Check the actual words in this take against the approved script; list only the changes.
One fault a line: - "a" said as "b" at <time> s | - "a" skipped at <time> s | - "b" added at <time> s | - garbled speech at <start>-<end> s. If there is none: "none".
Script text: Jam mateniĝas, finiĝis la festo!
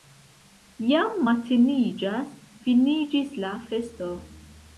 none